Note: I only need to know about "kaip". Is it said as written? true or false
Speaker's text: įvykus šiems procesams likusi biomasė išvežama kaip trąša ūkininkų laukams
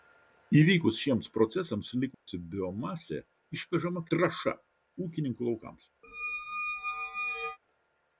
false